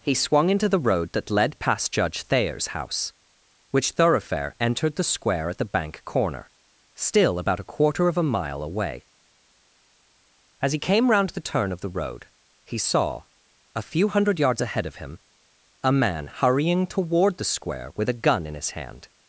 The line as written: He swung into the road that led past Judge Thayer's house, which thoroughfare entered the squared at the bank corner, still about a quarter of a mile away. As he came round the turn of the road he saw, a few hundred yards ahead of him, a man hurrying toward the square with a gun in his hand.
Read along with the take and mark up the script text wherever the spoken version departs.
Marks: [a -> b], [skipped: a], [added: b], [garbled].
He swung into the road that led past Judge Thayer's house, which thoroughfare entered the [squared -> square] at the bank corner, still about a quarter of a mile away. As he came round the turn of the road he saw, a few hundred yards ahead of him, a man hurrying toward the square with a gun in his hand.